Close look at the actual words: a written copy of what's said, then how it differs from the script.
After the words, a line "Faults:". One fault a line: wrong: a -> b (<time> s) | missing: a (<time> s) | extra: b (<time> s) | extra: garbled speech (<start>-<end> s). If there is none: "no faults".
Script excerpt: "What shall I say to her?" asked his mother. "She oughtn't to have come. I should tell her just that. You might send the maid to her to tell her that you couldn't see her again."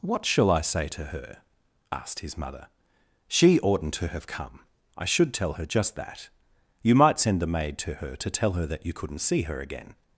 "What shall I say to her?" asked his mother. "She oughtn't to have come. I should tell her just that. You might send the maid to her to tell her that you couldn't see her again."
Faults:
no faults